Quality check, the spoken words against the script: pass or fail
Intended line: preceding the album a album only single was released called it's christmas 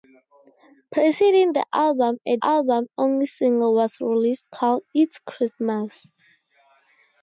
pass